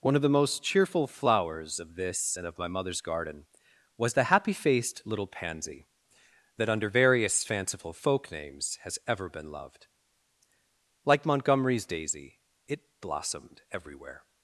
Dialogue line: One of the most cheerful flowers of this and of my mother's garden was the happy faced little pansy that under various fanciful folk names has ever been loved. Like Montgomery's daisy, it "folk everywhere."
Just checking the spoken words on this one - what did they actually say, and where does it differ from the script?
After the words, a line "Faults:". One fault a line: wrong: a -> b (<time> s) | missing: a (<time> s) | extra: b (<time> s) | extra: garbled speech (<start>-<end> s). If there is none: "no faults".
One of the most cheerful flowers of this and of my mother's garden was the happy faced little pansy that under various fanciful folk names has ever been loved. Like Montgomery's daisy, it "blossomed everywhere."
Faults:
wrong: folk -> blossomed (13.0 s)